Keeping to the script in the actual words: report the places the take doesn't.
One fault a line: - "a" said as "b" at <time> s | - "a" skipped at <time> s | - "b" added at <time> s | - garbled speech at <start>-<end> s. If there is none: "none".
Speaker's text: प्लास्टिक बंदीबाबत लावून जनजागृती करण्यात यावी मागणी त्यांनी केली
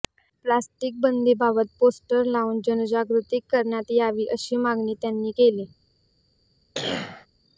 - "पोस्टर" added at 1.8 s
- "अशी" added at 4.3 s